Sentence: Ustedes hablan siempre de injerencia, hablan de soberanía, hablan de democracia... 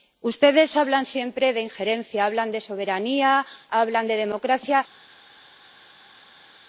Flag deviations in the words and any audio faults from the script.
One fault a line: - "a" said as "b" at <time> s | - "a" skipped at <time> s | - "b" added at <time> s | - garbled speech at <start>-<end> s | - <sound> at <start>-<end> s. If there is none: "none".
none